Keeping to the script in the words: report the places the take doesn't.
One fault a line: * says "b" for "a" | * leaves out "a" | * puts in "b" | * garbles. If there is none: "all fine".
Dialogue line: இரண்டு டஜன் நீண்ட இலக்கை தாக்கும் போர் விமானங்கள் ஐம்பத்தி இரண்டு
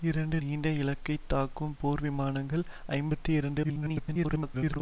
* leaves out "டஜன்"
* garbles